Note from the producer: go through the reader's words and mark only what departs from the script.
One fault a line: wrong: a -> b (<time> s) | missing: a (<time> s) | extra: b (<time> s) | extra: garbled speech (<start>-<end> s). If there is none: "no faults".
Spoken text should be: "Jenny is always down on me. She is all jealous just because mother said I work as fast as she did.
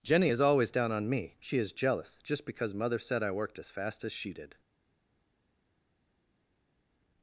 missing: all (1.7 s)
wrong: work -> worked (3.3 s)